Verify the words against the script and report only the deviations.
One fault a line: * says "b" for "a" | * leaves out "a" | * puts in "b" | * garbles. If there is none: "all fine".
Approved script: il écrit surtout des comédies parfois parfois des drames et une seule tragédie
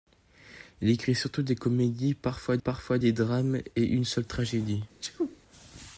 all fine